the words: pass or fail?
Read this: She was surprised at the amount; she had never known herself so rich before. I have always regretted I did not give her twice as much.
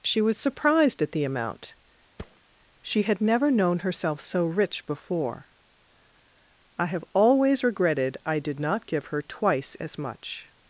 pass